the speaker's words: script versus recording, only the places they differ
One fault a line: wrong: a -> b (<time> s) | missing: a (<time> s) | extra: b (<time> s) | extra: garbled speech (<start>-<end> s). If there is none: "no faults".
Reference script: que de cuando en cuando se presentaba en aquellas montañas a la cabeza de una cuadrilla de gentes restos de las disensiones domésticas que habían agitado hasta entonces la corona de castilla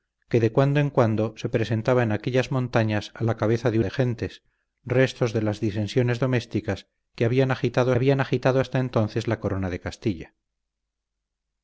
missing: una cuadrilla (3.8 s)
extra: habían agitado (7.9 s)